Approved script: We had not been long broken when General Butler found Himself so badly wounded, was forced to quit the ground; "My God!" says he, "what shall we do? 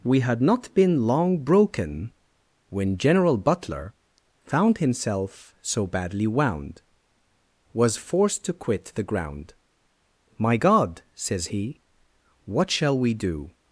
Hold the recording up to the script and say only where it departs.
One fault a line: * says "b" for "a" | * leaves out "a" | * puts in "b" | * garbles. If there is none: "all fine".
* says "wound" for "wounded"